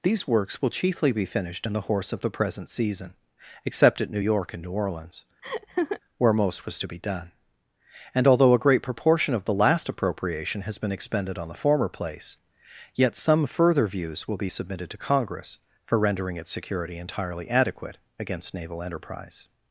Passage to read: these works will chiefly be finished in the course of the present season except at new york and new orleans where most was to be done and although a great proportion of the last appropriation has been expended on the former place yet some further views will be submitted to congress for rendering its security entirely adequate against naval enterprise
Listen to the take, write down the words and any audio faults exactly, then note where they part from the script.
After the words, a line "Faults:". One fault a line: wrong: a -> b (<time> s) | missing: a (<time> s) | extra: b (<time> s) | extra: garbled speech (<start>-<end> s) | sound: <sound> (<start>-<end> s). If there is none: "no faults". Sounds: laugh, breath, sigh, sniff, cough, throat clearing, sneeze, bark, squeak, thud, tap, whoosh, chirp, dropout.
these works will chiefly be finished in the horse of the present season except at new york and new orleans where most was to be done and although a great proportion of the last appropriation has been expended on the former place yet some further views will be submitted to congress for rendering its security entirely adequate against naval enterprise
Faults:
wrong: course -> horse (1.9 s)
sound: laugh (5.4-6.0 s)